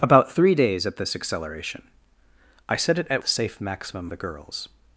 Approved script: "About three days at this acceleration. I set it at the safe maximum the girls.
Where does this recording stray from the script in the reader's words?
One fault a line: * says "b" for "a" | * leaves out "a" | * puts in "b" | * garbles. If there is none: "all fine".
all fine